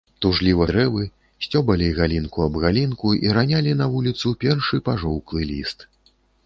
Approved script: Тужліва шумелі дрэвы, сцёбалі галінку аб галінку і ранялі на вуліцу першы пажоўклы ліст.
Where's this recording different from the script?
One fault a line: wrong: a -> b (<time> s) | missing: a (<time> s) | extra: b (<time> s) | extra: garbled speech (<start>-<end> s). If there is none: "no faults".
missing: шумелі (0.7 s)